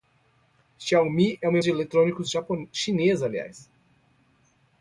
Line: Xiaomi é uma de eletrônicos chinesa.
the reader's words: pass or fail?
pass